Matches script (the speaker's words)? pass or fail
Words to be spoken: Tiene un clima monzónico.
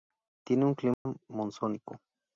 pass